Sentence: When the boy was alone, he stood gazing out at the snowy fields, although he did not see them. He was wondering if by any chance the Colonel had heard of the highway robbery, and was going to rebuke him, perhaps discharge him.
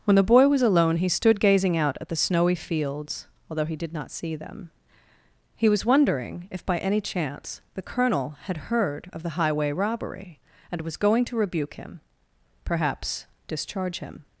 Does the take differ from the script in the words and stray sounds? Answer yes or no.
no